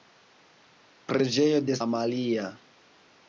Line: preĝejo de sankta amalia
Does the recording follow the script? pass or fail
fail